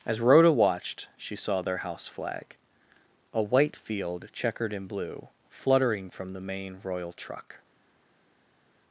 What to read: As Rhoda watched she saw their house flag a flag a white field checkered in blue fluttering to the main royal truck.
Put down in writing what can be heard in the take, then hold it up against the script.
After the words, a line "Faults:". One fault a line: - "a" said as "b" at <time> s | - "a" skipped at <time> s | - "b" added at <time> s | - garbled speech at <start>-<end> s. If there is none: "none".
As Rhoda watched she saw their house flag a white field checkered in blue fluttering from the main royal truck.
Faults:
- "flag a" skipped at 3.4 s
- "to" said as "from" at 6.1 s